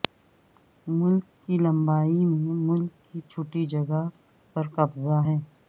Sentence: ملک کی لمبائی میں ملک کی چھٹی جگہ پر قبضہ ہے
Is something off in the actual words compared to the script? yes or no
no